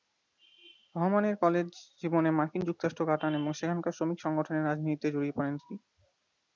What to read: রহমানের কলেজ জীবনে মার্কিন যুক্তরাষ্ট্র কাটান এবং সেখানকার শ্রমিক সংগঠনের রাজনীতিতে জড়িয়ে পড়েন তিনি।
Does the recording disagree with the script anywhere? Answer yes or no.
no